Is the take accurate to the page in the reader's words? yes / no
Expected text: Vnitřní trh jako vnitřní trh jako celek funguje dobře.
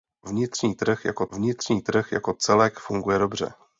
yes